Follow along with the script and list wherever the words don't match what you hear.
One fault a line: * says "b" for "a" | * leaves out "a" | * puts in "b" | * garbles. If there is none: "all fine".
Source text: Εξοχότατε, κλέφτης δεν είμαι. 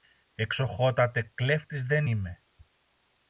all fine